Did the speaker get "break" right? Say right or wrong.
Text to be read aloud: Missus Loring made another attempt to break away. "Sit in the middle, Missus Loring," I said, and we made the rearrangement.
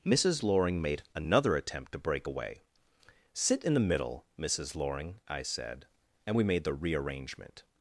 right